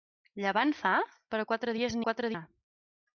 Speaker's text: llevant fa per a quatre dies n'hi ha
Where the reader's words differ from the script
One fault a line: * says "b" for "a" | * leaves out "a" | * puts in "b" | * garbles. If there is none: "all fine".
* says "quatre" for "n'hi"